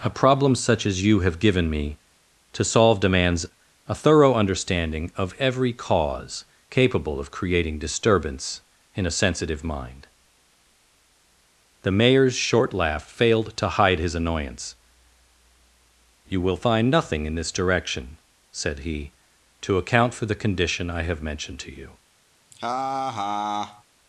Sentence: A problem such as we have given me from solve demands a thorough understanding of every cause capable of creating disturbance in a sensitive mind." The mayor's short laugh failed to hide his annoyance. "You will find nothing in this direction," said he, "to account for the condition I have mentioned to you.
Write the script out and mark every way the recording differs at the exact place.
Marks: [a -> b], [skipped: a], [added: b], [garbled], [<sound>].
A problem such as [we -> you] have given me [from -> to] solve demands a thorough understanding of every cause capable of creating disturbance in a sensitive mind." The mayor's short laugh failed to hide his annoyance. "You will find nothing in this direction," said he, "to account for the condition I have mentioned to you. [laugh]